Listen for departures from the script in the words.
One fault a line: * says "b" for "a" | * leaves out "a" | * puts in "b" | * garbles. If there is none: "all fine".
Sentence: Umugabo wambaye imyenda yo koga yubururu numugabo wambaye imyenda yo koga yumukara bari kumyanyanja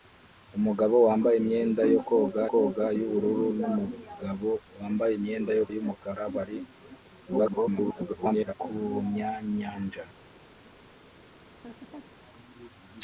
* puts in "koga"
* leaves out "koga"
* garbles